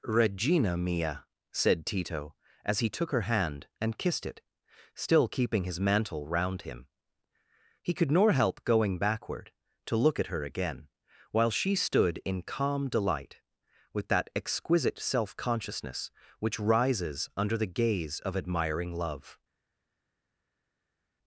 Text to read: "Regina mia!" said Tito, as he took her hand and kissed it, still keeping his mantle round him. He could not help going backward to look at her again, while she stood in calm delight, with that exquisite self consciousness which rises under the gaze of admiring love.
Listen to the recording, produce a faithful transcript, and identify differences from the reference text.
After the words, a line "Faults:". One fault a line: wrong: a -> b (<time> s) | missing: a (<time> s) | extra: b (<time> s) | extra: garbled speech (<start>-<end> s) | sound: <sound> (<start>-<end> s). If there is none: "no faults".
"Regina mia!" said Tito, as he took her hand and kissed it, still keeping his mantle round him. He could nor help going backward to look at her again, while she stood in calm delight, with that exquisite self consciousness which rises under the gaze of admiring love.
Faults:
wrong: not -> nor (8.1 s)